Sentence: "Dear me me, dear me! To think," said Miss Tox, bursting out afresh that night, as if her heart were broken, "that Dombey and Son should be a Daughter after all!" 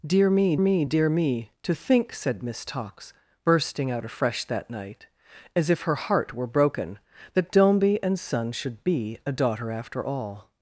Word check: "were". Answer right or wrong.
right